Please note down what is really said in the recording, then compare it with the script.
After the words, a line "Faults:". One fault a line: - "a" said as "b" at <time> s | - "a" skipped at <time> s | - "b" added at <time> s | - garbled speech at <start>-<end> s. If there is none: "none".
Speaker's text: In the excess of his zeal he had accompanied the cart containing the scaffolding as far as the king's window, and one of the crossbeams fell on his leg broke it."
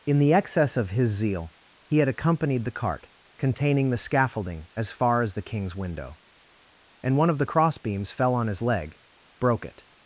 In the excess of his zeal he had accompanied the cart containing the scaffolding as far as the king's window, and one of the crossbeams fell on his leg broke it."
Faults:
none